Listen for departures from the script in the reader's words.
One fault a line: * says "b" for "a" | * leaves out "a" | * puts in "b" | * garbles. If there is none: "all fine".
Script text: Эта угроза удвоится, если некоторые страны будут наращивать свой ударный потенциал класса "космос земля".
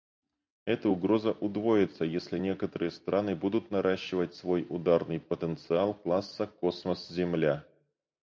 all fine